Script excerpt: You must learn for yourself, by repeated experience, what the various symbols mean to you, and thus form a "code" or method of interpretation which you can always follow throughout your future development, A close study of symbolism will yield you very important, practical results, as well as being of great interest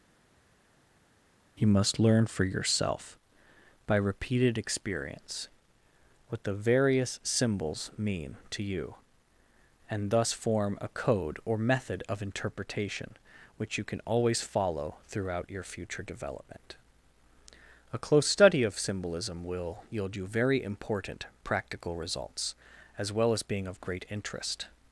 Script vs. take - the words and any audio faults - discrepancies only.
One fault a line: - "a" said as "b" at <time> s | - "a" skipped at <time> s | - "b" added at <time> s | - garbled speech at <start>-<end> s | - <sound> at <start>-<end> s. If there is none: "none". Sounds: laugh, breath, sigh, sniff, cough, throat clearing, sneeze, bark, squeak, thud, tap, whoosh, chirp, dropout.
none